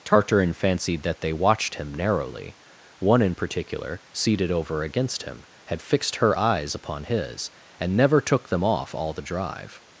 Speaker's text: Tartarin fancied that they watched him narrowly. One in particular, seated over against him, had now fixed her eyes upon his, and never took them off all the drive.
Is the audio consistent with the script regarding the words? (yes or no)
no